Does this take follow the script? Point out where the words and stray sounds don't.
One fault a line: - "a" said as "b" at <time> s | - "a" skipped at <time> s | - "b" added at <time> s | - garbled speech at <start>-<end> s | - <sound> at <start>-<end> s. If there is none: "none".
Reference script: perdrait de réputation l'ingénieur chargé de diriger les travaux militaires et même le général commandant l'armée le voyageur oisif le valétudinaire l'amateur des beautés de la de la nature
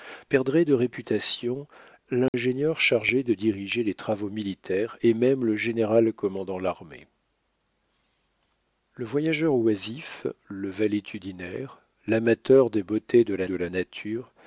- dropout at 2.3-2.3 s